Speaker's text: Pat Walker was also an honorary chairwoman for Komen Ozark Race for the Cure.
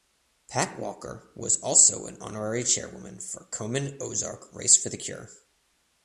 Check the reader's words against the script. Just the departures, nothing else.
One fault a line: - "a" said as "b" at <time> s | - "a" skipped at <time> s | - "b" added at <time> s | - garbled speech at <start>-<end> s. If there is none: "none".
none